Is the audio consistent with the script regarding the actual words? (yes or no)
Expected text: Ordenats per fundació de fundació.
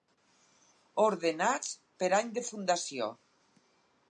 no